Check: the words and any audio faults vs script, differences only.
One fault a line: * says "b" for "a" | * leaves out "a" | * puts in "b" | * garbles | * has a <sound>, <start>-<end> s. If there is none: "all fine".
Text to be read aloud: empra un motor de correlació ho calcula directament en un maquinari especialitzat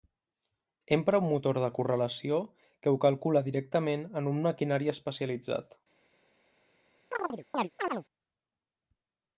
* puts in "que"
* has a chirp, 7.1-8.0 s